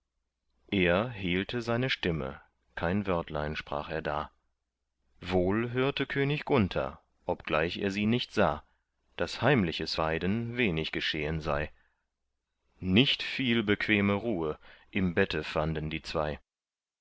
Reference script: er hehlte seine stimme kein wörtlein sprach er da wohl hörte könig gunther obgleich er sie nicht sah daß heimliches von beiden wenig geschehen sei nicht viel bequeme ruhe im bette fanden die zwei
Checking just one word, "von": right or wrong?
wrong